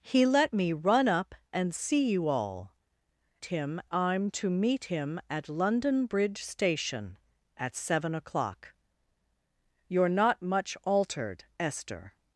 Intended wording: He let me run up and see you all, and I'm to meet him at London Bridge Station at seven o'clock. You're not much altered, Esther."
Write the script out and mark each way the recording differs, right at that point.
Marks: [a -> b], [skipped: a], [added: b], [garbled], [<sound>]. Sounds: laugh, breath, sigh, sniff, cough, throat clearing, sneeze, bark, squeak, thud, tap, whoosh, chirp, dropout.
He let me run up and see you all, [and -> him] I'm to meet him at London Bridge Station at seven o'clock. You're not much altered, Esther."